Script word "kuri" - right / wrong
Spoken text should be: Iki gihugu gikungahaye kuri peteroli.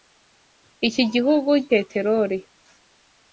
wrong